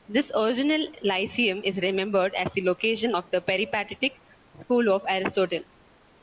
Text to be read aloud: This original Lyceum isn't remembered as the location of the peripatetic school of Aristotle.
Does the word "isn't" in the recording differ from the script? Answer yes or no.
yes